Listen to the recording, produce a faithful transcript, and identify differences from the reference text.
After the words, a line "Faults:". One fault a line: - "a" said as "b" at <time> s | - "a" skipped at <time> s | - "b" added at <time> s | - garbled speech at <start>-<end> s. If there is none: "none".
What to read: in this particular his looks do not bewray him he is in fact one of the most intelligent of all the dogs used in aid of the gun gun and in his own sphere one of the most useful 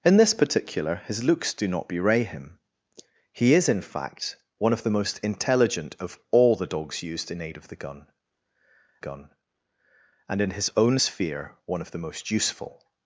in this particular his looks do not bewray him he is in fact one of the most intelligent of all the dogs used in aid of the gun gun and in his own sphere one of the most useful
Faults:
none